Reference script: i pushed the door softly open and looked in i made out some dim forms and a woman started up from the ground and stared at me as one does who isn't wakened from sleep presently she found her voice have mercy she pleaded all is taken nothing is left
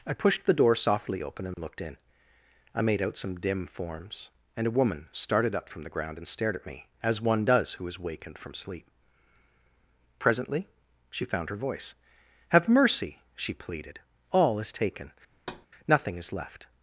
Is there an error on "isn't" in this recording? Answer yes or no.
yes